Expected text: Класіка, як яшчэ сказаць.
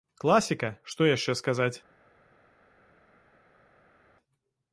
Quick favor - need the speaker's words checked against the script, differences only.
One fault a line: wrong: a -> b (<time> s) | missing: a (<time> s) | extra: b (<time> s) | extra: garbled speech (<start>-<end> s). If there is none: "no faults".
wrong: як -> што (0.9 s)